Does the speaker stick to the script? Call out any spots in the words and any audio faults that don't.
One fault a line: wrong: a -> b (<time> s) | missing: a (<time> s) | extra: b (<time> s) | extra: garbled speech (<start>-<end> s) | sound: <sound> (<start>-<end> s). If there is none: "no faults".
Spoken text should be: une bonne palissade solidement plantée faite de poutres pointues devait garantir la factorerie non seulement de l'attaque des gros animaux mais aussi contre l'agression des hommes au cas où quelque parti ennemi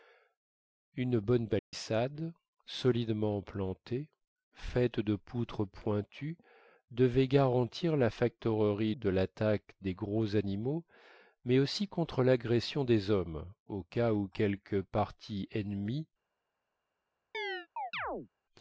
sound: dropout (1.6-1.7 s)
missing: non seulement (8.9 s)
sound: chirp (17.3-18.3 s)